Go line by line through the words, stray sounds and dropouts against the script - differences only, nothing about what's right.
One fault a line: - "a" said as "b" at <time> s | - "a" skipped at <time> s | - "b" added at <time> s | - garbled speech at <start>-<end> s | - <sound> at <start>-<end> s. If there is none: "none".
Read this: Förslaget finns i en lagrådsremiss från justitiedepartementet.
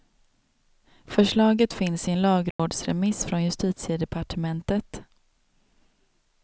- dropout at 2.5-2.6 s